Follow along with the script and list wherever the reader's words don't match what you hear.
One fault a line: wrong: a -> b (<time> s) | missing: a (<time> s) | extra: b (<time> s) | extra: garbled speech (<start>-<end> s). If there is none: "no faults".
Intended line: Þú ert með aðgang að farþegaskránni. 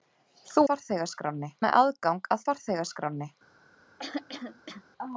wrong: ert -> farþegaskránni (0.7 s)